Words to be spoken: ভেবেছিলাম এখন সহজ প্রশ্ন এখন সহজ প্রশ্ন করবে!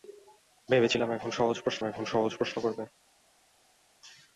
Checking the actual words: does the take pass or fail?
pass